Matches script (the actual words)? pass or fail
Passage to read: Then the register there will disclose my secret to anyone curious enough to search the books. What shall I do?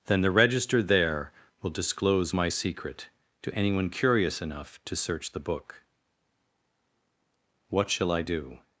fail